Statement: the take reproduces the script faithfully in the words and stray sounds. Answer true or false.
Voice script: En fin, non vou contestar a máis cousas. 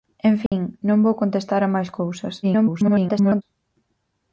false